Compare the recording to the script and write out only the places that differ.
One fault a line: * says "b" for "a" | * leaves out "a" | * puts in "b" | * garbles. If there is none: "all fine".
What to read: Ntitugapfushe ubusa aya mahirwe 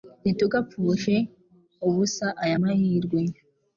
all fine